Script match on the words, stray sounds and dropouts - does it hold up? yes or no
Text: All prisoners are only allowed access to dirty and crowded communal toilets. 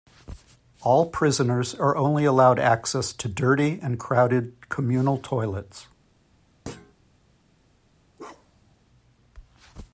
no